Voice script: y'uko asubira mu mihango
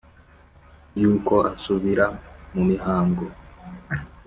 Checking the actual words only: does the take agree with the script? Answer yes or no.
yes